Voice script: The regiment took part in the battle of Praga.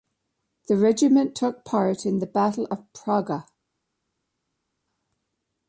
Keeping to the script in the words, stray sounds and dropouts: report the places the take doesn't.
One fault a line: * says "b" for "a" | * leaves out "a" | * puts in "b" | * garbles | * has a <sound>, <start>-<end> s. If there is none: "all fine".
all fine